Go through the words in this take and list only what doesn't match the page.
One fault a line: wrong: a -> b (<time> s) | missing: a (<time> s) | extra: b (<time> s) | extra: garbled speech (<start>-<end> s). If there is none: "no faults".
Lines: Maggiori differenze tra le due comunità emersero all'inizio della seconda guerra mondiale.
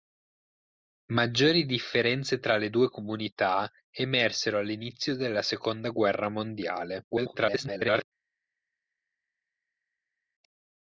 extra: garbled speech (7.1-8.0 s)